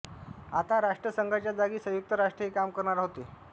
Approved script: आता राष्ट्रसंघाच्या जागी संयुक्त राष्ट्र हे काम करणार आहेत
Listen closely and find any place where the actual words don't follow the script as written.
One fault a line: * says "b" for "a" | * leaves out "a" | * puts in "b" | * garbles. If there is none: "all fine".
* says "होते" for "आहेत"